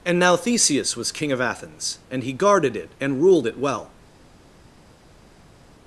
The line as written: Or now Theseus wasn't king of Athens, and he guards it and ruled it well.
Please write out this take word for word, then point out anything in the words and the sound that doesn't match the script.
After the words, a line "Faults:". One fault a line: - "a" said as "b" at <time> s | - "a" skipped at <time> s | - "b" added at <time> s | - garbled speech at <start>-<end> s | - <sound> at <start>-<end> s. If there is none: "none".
And now Theseus was king of Athens, and he guarded it and ruled it well.
Faults:
- "Or" said as "And" at 0.1 s
- "wasn't" said as "was" at 1.0 s
- "guards" said as "guarded" at 2.3 s